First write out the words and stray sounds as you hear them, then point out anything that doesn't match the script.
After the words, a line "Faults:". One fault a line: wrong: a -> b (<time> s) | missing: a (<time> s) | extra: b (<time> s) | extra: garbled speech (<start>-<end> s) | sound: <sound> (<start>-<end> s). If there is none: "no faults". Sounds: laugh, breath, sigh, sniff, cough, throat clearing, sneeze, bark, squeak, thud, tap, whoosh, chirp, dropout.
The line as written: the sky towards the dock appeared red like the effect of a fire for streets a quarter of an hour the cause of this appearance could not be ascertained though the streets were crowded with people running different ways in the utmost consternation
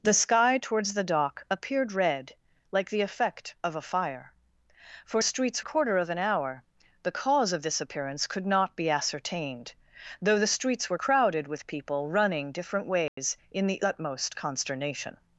the sky towards the dock appeared red like the effect of a fire for streets a quarter of an hour the cause of this appearance could not be ascertained though the streets were crowded with people running different ways in the utmost consternation
Faults:
sound: dropout (13.1-13.2 s)